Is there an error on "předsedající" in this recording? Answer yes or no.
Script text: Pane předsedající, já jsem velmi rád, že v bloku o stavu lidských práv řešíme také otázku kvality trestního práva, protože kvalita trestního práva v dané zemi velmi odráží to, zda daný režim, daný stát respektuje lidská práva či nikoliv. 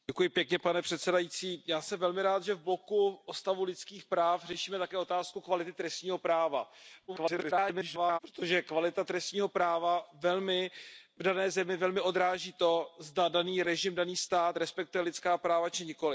no